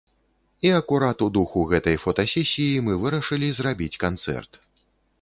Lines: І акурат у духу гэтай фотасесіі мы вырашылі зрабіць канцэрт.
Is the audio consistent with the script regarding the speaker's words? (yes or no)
yes